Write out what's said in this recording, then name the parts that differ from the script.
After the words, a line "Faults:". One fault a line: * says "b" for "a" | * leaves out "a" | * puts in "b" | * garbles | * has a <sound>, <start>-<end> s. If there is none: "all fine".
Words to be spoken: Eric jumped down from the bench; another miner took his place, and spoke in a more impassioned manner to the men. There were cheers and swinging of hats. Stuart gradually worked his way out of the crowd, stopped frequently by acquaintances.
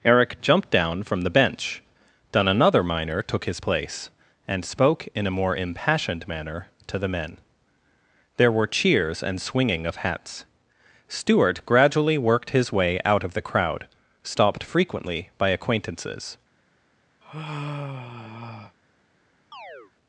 Eric jumped down from the bench; then another miner took his place, and spoke in a more impassioned manner to the men. There were cheers and swinging of hats. Stuart gradually worked his way out of the crowd, stopped frequently by acquaintances.
Faults:
* puts in "then"
* has a sigh, 17.2-18.8 s
* has a chirp, 19.5-19.9 s